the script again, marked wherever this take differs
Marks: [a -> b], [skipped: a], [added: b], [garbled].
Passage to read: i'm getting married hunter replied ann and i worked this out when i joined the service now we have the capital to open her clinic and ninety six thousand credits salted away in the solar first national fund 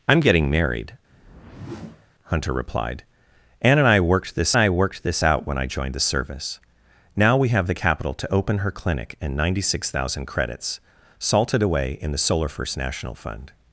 i'm getting married hunter replied ann and i worked this [added: i worked this] out when i joined the service now we have the capital to open her clinic and ninety six thousand credits salted away in the solar first national fund